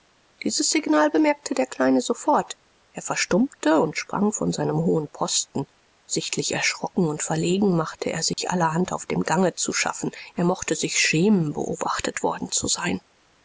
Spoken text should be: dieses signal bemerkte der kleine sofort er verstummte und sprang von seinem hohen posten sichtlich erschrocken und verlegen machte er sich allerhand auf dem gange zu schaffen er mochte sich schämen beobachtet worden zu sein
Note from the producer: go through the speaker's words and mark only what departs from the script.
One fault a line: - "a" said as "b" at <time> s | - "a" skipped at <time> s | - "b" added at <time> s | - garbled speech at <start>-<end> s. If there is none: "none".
none